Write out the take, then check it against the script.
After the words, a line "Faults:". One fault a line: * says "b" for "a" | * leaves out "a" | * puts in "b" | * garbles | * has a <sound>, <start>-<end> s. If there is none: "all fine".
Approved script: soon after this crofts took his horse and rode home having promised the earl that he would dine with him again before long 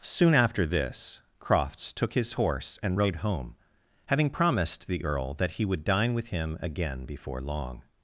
soon after this crofts took his horse and rode home having promised the earl that he would dine with him again before long
Faults:
all fine